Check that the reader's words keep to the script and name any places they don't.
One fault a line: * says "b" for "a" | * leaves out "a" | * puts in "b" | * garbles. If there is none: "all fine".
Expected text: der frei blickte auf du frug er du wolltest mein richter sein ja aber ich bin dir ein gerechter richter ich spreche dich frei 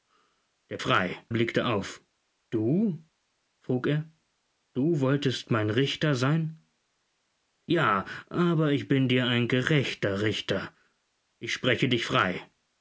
all fine